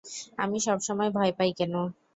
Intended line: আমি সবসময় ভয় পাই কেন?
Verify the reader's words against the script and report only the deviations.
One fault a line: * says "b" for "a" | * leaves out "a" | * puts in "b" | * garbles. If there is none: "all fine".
all fine